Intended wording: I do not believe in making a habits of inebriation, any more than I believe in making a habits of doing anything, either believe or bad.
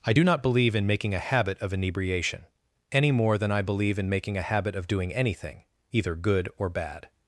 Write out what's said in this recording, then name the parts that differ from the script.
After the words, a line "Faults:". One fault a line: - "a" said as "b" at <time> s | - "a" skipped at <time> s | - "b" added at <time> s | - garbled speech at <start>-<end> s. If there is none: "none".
I do not believe in making a habit of inebriation, any more than I believe in making a habit of doing anything, either good or bad.
Faults:
- "habits" said as "habit" at 1.2 s
- "habits" said as "habit" at 4.4 s
- "believe" said as "good" at 6.1 s